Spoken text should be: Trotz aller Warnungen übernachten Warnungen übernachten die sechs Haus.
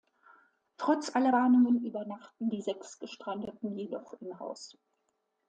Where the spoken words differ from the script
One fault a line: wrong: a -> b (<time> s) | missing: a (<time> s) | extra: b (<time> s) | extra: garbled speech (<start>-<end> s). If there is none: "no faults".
wrong: Warnungen übernachten die sechs -> die sechs Gestrandeten jedoch im (2.5 s)